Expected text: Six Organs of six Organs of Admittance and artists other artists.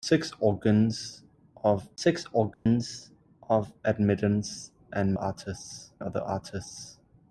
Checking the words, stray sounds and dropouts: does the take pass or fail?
fail